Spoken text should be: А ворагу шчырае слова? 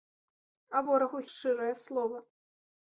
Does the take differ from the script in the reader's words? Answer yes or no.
no